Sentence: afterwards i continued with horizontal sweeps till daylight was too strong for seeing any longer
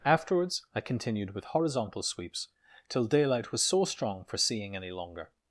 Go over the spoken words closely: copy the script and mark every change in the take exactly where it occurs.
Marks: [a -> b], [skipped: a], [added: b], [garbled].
afterwards i continued with horizontal sweeps till daylight was [too -> so] strong for seeing any longer